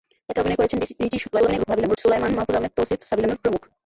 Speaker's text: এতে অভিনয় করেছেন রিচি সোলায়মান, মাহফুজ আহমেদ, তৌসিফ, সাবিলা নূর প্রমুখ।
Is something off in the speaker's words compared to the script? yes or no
yes